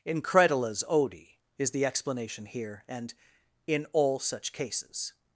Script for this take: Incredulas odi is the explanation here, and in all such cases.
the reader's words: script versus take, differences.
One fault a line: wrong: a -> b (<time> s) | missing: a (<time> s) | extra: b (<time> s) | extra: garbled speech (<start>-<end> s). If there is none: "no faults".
no faults